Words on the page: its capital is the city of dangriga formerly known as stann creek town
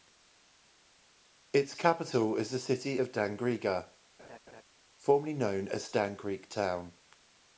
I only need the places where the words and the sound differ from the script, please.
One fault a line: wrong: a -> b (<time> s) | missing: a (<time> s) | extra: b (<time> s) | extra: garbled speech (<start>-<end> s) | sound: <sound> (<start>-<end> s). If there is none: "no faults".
sound: laugh (4.2-4.6 s)